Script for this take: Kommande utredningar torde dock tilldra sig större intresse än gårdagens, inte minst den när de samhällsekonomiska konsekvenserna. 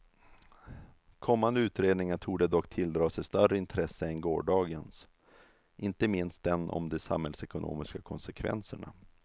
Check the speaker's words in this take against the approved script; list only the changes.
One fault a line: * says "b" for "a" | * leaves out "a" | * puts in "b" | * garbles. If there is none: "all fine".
* says "om" for "när"